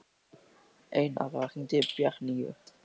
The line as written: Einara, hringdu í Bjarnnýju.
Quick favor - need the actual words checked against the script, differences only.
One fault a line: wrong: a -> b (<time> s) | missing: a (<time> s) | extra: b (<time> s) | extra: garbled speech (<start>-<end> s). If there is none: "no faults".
no faults